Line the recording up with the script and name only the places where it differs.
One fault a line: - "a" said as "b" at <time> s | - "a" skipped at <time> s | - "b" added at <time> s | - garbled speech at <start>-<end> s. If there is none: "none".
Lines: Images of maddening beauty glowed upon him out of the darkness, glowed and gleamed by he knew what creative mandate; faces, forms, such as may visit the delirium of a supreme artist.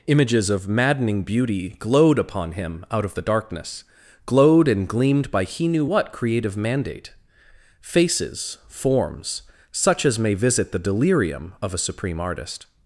none